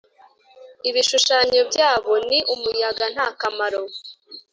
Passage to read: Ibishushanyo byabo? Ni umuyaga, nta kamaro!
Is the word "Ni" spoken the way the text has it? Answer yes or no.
yes